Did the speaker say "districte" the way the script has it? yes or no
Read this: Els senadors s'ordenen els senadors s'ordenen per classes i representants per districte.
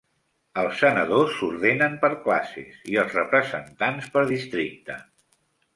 yes